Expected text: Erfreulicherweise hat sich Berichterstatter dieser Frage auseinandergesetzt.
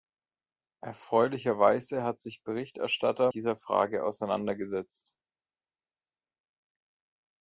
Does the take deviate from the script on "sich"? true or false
false